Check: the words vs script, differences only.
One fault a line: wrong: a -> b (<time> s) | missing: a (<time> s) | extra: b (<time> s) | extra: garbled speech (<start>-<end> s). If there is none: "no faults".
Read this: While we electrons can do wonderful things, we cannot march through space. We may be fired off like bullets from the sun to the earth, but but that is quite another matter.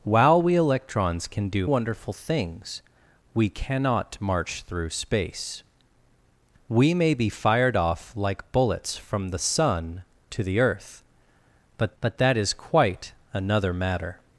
no faults